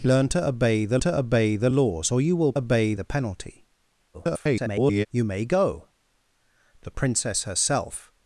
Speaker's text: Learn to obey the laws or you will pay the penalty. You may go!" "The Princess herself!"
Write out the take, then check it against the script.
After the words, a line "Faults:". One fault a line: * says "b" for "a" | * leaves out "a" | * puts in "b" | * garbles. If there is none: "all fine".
Learn to obey the to obey the laws or you will obey the penalty. [garbled] You may go!" "The Princess herself!"
Faults:
* puts in "to obey the"
* says "obey" for "pay"
* garbles